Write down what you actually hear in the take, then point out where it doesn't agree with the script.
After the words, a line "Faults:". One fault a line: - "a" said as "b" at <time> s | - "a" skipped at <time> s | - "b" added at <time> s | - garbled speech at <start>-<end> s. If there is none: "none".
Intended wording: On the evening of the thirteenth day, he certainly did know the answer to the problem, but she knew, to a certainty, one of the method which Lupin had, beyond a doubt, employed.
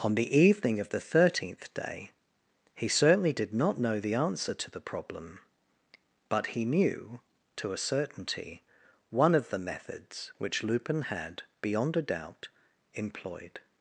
On the evening of the thirteenth day, he certainly did not know the answer to the problem, but he knew, to a certainty, one of the methods which Lupin had, beyond a doubt, employed.
Faults:
- "not" added at 3.5 s
- "she" said as "he" at 6.5 s
- "method" said as "methods" at 9.6 s